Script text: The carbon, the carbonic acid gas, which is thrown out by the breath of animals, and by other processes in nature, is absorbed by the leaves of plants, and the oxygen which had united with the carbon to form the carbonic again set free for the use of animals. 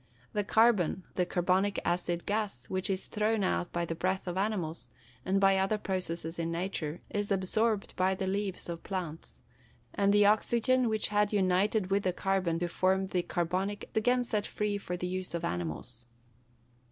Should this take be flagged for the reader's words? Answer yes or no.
no